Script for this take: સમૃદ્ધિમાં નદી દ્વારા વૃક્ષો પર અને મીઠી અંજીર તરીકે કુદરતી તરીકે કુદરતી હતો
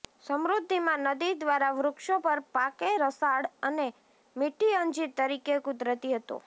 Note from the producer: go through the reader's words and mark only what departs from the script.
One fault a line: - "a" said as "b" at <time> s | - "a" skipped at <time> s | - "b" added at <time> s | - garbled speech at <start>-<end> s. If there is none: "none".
- "પાકે રસાળ" added at 2.5 s
- "તરીકે કુદરતી" skipped at 6.2 s